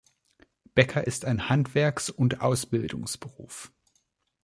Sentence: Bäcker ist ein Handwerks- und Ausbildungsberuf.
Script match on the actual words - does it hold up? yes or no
yes